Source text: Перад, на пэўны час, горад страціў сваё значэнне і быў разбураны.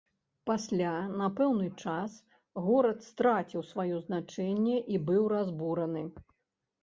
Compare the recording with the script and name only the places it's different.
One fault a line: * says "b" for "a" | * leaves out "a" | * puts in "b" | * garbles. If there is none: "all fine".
* says "Пасля" for "Перад"